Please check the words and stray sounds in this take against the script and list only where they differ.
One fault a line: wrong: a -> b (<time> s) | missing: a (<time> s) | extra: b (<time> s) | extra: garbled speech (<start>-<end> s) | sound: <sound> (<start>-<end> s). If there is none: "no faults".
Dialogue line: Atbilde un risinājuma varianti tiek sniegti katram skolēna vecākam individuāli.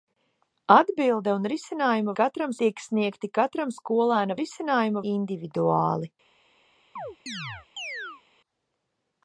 wrong: varianti -> katram (2.2 s)
wrong: vecākam -> risinājuma (4.4 s)
sound: chirp (7.0-8.2 s)